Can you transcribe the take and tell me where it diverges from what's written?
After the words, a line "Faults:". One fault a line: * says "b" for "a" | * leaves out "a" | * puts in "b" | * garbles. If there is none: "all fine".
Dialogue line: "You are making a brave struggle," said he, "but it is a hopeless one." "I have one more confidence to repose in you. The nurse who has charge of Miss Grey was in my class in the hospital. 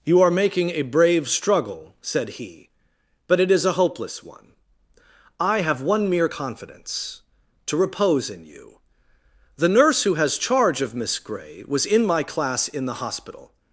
"You are making a brave struggle," said he, "but it is a hopeless one." "I have one mere confidence to repose in you. The nurse who has charge of Miss Grey was in my class in the hospital.
Faults:
* says "mere" for "more"